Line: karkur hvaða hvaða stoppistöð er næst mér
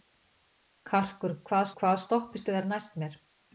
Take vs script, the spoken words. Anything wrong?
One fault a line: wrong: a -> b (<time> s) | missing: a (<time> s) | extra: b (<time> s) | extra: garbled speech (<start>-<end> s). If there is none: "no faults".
no faults